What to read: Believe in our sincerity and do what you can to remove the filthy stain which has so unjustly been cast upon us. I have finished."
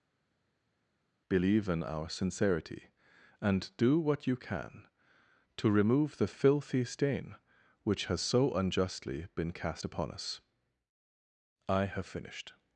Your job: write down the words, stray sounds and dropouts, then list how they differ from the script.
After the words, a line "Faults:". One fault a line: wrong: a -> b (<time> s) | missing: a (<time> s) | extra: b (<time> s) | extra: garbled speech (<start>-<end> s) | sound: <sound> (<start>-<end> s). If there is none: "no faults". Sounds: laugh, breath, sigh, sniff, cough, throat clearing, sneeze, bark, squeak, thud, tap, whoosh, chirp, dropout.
Believe in our sincerity and do what you can to remove the filthy stain which has so unjustly been cast upon us. I have finished."
Faults:
no faults